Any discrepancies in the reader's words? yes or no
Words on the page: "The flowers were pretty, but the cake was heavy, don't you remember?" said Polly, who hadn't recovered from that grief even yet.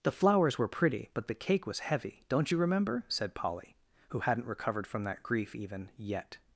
no